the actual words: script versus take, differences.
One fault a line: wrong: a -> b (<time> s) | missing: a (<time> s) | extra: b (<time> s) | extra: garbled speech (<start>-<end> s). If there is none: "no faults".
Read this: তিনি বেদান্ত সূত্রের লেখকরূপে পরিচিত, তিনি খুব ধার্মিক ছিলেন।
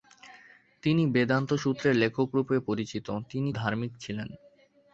missing: খুব (3.5 s)